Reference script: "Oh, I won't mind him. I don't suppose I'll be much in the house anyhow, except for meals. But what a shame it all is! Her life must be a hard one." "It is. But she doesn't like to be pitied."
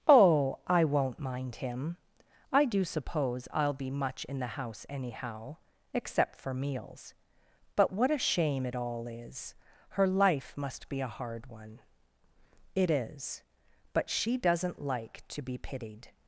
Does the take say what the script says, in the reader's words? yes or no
no